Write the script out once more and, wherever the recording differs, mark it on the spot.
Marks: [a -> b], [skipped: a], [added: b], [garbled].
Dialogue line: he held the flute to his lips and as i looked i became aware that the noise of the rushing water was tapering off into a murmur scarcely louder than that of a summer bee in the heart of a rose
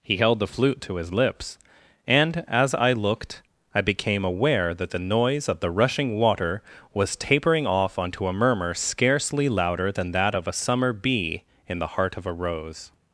he held the flute to his lips and as i looked i became aware that the noise of the rushing water was tapering off [into -> onto] a murmur scarcely louder than that of a summer bee in the heart of a rose